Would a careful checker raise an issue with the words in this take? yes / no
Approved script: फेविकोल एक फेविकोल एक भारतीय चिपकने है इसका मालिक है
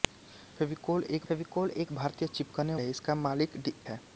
no